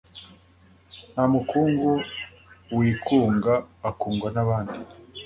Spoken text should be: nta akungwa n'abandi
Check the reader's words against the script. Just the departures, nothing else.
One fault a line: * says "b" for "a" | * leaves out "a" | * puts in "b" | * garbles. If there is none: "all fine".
* puts in "mukungu wikunga"